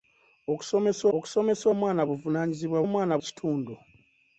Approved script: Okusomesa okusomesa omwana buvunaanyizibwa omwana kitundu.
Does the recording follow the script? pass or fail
pass